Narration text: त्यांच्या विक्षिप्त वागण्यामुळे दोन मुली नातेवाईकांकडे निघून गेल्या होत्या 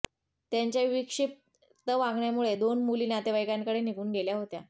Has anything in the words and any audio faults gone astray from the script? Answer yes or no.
no